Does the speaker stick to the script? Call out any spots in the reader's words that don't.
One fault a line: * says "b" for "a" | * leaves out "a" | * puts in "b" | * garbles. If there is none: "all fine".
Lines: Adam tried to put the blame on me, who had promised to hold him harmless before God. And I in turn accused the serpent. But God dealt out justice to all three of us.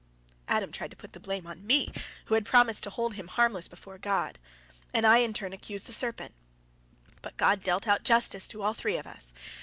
all fine